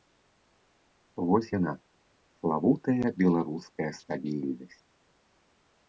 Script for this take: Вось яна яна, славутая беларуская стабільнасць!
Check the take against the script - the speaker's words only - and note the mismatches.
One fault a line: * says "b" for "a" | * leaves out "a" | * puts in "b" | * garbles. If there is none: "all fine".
* leaves out "яна"